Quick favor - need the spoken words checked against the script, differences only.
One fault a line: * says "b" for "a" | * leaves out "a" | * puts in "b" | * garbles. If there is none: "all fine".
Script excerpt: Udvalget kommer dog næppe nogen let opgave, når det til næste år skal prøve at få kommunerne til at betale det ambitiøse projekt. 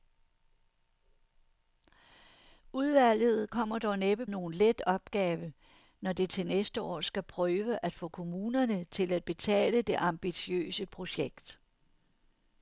all fine